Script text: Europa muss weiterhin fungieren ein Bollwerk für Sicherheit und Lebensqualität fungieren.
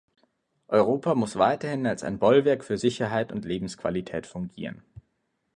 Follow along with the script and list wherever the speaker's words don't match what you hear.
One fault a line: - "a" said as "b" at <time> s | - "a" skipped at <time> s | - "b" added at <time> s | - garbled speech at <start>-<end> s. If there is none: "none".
- "fungieren" said as "als" at 1.9 s